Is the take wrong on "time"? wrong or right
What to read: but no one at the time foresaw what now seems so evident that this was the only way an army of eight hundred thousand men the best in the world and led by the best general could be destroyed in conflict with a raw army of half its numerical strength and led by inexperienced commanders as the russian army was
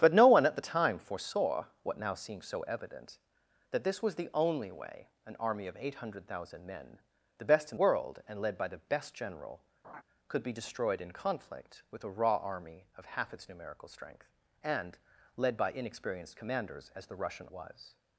right